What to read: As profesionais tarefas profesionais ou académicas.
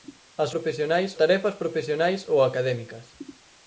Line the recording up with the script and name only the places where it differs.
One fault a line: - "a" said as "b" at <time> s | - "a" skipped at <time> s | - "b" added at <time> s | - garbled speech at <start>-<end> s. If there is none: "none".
none